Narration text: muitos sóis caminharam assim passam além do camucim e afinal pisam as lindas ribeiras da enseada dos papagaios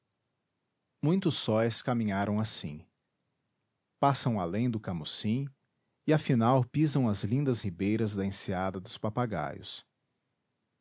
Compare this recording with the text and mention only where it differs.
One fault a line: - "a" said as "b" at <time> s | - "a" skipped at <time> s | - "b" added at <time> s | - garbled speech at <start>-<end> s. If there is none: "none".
none